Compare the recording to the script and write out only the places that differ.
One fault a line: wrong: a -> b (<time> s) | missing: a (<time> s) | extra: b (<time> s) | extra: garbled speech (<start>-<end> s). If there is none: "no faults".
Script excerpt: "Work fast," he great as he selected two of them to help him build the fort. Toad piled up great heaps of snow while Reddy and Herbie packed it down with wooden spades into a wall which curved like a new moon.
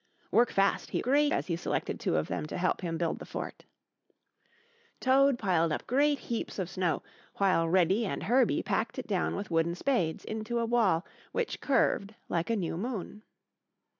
no faults